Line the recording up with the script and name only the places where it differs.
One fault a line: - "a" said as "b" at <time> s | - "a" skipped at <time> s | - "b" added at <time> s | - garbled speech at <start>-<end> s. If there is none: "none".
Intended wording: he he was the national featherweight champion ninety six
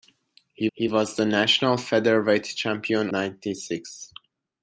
none